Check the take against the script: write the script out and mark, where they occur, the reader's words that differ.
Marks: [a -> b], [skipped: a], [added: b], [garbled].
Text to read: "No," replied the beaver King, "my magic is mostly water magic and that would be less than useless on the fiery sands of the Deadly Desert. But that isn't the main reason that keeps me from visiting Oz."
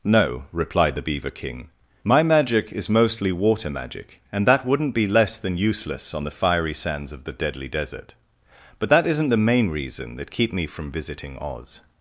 "No," replied the beaver King, "my magic is mostly water magic and that [would -> wouldn't] be less than useless on the fiery sands of the Deadly Desert. But that isn't the main reason that [keeps -> keep] me from visiting Oz."